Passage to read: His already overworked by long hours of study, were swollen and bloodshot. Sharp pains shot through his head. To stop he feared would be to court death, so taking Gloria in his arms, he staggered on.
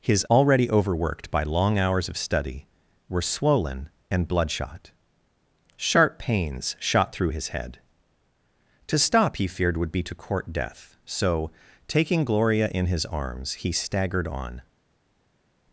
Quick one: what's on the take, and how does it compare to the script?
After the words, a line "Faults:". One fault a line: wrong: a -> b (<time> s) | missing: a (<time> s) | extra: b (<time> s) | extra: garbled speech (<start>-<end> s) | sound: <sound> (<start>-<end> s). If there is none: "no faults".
His already overworked by long hours of study, were swollen and bloodshot. Sharp pains shot through his head. To stop he feared would be to court death, so taking Gloria in his arms, he staggered on.
Faults:
no faults